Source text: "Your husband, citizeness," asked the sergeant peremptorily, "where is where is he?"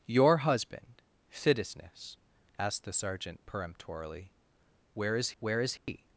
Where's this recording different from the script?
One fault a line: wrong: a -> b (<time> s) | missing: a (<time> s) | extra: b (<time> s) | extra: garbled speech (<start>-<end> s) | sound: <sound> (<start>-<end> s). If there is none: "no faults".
sound: dropout (5.8-5.9 s)